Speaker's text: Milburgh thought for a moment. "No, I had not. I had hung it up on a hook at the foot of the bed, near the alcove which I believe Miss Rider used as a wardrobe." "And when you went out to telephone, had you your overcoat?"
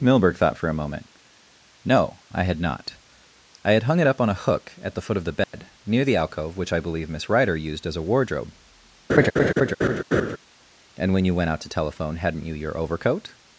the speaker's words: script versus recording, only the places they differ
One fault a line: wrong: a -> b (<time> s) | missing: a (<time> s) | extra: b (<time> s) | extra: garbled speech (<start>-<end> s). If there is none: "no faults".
wrong: had -> hadn't (12.2 s)